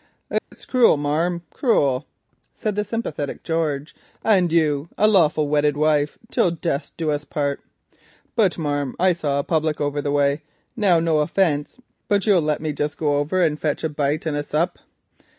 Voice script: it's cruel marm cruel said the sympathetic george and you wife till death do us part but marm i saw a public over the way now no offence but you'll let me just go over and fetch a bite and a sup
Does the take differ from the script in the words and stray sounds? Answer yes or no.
yes